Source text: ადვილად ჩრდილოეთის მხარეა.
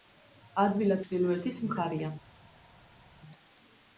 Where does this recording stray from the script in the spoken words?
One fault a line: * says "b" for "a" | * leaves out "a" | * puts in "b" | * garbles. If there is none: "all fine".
all fine